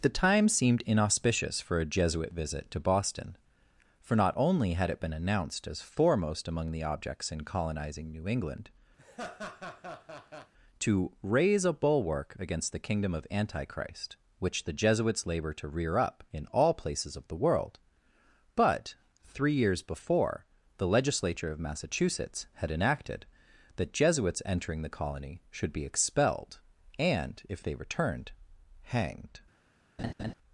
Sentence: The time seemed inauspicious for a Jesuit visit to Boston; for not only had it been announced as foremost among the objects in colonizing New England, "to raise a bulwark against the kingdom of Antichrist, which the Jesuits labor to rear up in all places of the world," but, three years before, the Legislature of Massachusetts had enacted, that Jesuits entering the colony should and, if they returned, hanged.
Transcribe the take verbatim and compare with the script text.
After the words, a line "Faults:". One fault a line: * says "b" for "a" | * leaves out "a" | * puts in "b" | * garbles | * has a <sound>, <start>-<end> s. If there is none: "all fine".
The time seemed inauspicious for a Jesuit visit to Boston; for not only had it been announced as foremost among the objects in colonizing New England, "to raise a bulwark against the kingdom of Antichrist, which the Jesuits labor to rear up in all places of the world," but, three years before, the Legislature of Massachusetts had enacted, that Jesuits entering the colony should be expelled, and, if they returned, hanged.
Faults:
* has a laugh, 9.0-10.5 s
* puts in "be expelled"
* has a laugh, 30.0-30.3 s